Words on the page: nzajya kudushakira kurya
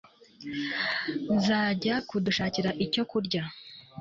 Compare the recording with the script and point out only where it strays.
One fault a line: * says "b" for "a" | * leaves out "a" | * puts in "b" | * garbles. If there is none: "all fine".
* puts in "icyo"